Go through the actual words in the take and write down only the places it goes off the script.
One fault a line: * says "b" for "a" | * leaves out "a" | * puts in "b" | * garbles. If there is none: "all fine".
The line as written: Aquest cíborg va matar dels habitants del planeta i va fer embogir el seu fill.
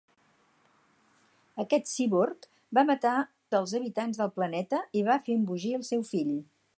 all fine